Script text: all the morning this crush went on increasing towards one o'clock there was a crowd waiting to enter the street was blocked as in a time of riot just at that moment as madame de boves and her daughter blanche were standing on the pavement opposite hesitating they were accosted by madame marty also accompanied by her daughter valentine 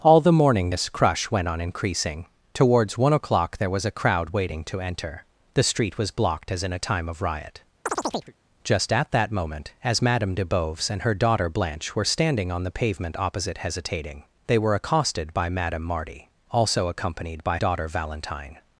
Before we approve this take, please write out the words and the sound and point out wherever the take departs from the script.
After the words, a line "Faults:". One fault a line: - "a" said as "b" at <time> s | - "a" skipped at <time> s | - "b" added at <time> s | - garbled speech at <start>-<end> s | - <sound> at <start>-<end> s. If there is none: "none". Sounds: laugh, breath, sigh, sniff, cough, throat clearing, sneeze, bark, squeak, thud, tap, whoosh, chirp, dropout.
all the morning this crush went on increasing towards one o'clock there was a crowd waiting to enter the street was blocked as in a time of riot just at that moment as madame de boves and her daughter blanche were standing on the pavement opposite hesitating they were accosted by madame marty also accompanied by daughter valentine
Faults:
- chirp at 7.9-8.3 s
- "her" skipped at 17.6 s